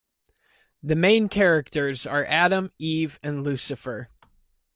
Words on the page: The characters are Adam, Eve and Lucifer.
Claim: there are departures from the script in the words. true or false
true